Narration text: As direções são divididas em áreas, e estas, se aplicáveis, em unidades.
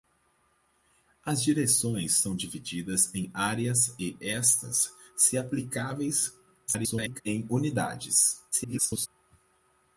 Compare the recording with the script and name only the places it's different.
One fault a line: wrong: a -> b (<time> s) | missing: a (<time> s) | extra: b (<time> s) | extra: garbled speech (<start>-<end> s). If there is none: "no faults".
extra: garbled speech (6.7-7.2 s)
extra: garbled speech (8.5-9.1 s)